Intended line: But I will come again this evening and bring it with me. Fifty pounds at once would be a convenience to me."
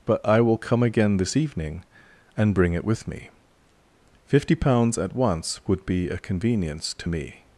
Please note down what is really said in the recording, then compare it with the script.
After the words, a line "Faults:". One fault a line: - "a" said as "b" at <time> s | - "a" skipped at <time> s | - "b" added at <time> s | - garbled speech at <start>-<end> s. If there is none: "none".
But I will come again this evening and bring it with me. Fifty pounds at once would be a convenience to me."
Faults:
none